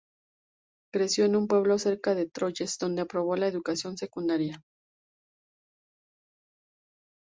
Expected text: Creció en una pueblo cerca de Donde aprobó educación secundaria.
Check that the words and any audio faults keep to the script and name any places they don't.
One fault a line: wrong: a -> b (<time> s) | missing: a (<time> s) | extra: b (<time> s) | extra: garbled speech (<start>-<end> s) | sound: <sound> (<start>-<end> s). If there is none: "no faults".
wrong: una -> un (1.4 s)
extra: Troyes (2.3 s)
extra: la (3.4 s)